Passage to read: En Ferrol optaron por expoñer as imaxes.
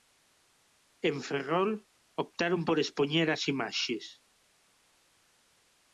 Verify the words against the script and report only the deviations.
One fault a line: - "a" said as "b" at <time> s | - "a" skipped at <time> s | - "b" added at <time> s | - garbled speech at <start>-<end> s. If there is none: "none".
none